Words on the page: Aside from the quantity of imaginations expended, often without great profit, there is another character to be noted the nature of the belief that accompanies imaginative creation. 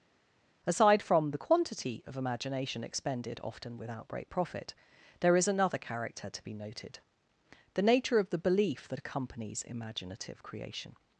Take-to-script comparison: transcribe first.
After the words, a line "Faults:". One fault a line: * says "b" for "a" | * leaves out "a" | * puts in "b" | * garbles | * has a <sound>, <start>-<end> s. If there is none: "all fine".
Aside from the quantity of imagination expended, often without great profit, there is another character to be noted the nature of the belief that accompanies imaginative creation.
Faults:
* says "imagination" for "imaginations"